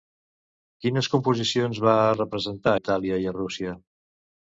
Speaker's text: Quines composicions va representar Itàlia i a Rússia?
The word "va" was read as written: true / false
true